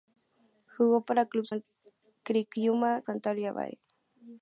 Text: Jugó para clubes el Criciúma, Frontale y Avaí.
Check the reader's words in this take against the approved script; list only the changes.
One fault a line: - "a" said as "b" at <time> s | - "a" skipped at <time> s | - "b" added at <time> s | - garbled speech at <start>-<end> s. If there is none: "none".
none